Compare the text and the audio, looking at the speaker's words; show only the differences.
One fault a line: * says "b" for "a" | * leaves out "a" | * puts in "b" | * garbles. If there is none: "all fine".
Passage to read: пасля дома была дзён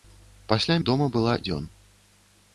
all fine